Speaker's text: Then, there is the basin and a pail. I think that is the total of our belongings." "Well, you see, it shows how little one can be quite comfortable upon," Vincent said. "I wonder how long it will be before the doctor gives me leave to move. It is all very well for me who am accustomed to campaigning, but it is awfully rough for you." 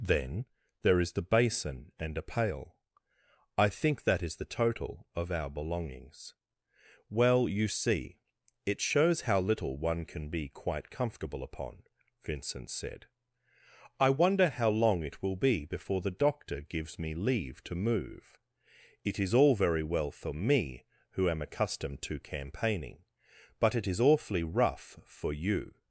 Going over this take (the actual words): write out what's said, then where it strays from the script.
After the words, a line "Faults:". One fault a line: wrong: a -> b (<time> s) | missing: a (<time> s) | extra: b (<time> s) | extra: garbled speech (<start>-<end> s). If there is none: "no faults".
Then, there is the basin and a pail. I think that is the total of our belongings." "Well, you see, it shows how little one can be quite comfortable upon," Vincent said. "I wonder how long it will be before the doctor gives me leave to move. It is all very well for me who am accustomed to campaigning, but it is awfully rough for you."
Faults:
no faults